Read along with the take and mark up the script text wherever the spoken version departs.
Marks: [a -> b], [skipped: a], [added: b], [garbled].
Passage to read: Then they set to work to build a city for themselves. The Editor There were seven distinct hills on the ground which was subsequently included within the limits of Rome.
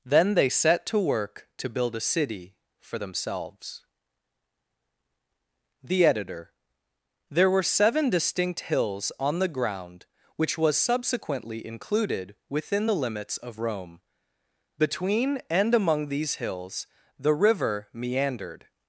Then they set to work to build a city for themselves. The Editor There were seven distinct hills on the ground which was subsequently included within the limits of Rome. [added: Between and among these hills the river meandered]